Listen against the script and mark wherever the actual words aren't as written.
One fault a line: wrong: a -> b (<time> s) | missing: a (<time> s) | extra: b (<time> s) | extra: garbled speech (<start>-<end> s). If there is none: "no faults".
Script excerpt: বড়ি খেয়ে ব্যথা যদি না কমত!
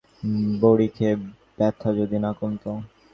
no faults